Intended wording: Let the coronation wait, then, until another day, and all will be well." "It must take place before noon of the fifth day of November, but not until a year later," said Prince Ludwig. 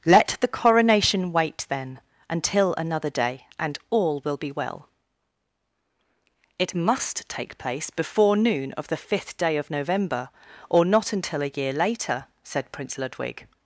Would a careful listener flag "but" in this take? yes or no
yes